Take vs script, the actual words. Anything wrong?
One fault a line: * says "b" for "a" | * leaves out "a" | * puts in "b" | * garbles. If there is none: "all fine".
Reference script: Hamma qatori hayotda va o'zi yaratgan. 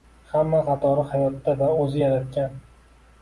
all fine